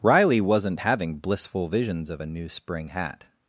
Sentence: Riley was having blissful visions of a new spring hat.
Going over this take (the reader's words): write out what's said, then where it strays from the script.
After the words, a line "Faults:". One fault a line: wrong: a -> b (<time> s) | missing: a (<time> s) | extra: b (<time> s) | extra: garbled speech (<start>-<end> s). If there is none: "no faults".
Riley wasn't having blissful visions of a new spring hat.
Faults:
wrong: was -> wasn't (0.4 s)